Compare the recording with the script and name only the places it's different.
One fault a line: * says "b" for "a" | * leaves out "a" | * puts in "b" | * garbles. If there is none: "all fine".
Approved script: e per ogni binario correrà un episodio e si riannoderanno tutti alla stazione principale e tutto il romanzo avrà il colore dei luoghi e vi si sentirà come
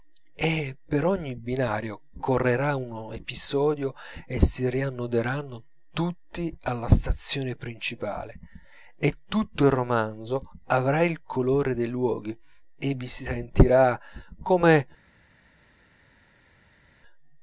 all fine